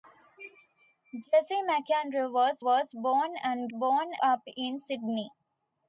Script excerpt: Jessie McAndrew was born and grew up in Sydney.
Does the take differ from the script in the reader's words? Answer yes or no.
yes